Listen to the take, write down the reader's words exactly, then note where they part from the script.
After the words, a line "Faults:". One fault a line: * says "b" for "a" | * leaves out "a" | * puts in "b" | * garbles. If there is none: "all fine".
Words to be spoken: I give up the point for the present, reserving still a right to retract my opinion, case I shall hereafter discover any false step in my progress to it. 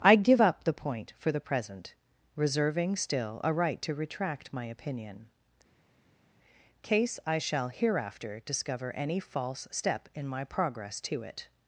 I give up the point for the present, reserving still a right to retract my opinion, case I shall hereafter discover any false step in my progress to it.
Faults:
all fine